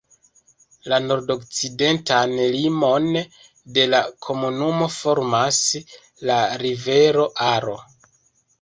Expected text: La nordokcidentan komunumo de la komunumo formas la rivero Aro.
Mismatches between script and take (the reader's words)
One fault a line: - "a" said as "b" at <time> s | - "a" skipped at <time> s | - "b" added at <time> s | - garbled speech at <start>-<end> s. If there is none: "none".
- "komunumo" said as "limon" at 2.5 s